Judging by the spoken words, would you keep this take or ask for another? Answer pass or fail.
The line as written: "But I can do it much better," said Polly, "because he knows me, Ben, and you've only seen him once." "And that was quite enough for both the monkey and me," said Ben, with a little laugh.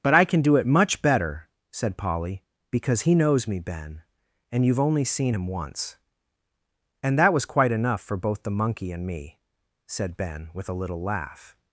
pass